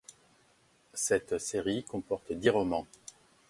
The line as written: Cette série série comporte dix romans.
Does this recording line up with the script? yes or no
no